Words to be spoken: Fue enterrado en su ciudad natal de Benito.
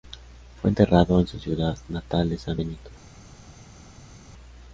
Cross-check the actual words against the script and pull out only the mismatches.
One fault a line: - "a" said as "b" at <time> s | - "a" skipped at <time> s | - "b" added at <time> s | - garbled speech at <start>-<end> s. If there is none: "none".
- "San" added at 2.4 s